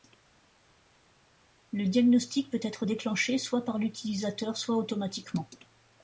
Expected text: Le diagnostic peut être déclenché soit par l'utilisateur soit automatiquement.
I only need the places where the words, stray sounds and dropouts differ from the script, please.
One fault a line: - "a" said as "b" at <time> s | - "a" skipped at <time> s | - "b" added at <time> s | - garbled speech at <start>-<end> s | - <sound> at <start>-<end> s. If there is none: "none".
none